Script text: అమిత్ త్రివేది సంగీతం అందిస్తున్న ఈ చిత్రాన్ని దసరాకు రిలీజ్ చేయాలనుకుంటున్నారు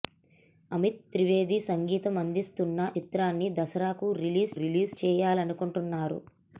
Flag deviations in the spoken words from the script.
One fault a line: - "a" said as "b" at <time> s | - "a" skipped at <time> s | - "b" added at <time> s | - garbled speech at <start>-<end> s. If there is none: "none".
- "ఈ" skipped at 2.8 s
- "రిలీజ్" added at 4.6 s